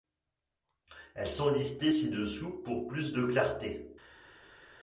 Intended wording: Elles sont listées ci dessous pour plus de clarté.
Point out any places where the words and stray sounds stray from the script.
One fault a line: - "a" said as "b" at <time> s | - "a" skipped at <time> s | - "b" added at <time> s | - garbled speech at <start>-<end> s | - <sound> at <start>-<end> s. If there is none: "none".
none